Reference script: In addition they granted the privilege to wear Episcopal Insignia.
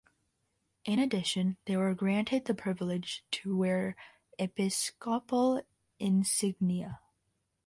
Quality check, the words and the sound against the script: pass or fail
fail